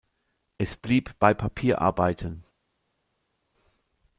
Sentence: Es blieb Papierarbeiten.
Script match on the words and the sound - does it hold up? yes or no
no